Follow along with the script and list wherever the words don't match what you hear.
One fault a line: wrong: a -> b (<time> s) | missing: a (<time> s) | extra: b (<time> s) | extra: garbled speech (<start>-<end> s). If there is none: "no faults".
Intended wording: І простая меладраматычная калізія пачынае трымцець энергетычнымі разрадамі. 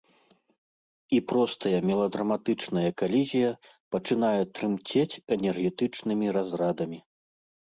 no faults